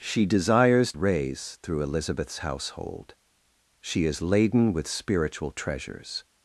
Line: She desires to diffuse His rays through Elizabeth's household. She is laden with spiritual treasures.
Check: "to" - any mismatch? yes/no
yes